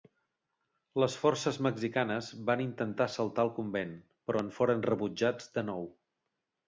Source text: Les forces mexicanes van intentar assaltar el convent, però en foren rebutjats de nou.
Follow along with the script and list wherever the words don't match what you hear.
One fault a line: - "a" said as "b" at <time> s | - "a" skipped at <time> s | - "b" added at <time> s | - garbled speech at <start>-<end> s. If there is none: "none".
none